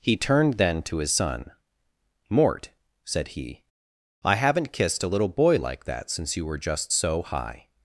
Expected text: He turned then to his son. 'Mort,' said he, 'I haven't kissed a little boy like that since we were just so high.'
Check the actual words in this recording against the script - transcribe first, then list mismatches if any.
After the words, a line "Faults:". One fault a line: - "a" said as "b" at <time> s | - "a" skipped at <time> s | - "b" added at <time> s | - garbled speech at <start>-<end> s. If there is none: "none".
He turned then to his son. 'Mort,' said he, 'I haven't kissed a little boy like that since you were just so high.'
Faults:
- "we" said as "you" at 6.4 s